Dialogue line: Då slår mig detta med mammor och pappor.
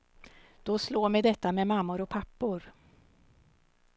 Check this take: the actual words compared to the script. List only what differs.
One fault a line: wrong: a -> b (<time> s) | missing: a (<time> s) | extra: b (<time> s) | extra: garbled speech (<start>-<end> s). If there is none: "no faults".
no faults